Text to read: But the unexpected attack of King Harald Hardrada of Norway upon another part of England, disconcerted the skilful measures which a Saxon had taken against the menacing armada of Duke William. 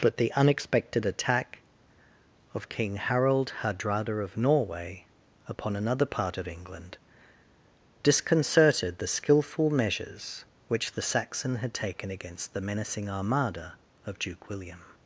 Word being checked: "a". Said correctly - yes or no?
no